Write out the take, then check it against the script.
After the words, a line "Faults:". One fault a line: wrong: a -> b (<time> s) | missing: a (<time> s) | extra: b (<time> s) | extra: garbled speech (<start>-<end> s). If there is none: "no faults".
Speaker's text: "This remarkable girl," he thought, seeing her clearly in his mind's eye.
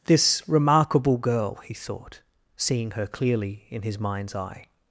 "This remarkable girl," he thought, seeing her clearly in his mind's eye.
Faults:
no faults